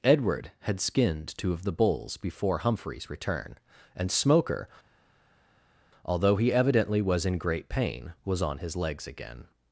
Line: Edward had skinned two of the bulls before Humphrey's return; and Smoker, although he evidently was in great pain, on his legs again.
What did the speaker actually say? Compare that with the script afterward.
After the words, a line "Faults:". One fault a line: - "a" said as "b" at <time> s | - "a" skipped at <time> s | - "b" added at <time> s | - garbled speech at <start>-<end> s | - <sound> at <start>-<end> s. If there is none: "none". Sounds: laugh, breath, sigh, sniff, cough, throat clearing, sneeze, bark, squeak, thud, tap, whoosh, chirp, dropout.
Edward had skinned two of the bulls before Humphrey's return; and Smoker, although he evidently was in great pain, was on his legs again.
Faults:
- "was" added at 8.2 s